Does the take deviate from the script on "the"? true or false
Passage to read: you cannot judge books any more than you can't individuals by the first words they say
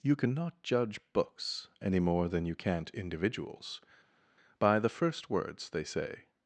false